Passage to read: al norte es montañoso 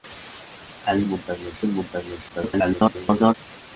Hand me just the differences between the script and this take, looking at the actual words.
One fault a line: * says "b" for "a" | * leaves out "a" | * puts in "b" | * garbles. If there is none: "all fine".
* says "montañoso" for "norte"
* garbles